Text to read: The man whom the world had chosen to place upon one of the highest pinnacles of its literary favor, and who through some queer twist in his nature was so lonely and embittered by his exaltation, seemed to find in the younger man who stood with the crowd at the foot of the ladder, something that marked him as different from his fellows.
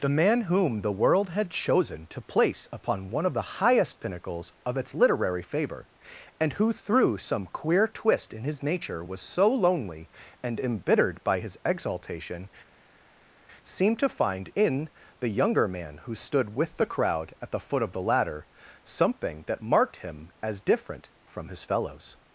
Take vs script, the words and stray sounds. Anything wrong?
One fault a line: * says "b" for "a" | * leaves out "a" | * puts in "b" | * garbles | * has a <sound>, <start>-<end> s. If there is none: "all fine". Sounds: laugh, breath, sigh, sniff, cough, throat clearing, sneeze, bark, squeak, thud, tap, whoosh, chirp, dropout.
all fine